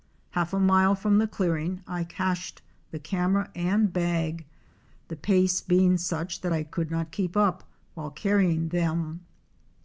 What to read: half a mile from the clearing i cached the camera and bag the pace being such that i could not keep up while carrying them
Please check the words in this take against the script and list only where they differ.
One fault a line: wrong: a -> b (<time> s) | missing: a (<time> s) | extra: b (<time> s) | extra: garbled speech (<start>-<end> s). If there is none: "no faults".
no faults